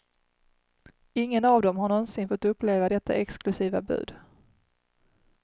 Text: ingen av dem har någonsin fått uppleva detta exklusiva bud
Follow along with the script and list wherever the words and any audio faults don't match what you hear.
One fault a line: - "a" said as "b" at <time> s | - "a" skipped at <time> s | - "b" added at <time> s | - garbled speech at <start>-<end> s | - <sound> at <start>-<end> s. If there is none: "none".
none